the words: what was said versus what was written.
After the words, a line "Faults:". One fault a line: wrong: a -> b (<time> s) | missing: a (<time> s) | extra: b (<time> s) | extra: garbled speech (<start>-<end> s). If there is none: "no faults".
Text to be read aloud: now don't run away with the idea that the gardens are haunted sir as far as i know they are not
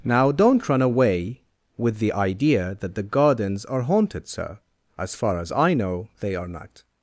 now don't run away with the idea that the gardens are haunted sir as far as i know they are not
Faults:
no faults